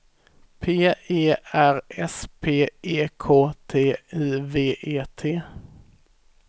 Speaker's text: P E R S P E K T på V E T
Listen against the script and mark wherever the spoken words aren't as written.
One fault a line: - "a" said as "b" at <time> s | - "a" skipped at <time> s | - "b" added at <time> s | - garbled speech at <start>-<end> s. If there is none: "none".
- "på" said as "I" at 3.9 s